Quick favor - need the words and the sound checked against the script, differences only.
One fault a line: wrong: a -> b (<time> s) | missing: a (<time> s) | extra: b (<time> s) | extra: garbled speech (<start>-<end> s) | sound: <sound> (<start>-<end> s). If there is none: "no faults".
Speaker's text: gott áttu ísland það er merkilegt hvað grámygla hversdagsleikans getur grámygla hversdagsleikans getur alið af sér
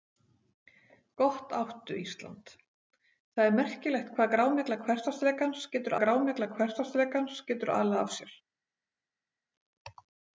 no faults